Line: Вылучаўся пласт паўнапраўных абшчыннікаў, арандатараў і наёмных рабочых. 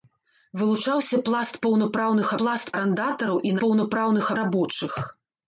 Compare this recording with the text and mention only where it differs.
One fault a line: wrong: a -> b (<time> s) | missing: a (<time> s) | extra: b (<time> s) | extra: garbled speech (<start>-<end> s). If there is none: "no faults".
wrong: абшчыннікаў -> пласт (2.4 s)
wrong: наёмных -> паўнапраўных (3.6 s)